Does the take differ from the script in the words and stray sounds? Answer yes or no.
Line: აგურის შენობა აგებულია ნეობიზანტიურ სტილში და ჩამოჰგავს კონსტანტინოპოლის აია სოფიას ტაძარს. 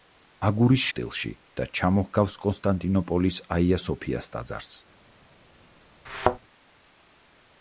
yes